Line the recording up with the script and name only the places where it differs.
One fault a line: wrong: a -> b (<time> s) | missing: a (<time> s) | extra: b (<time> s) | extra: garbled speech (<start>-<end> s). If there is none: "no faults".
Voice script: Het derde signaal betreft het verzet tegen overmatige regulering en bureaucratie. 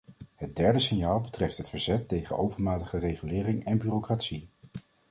no faults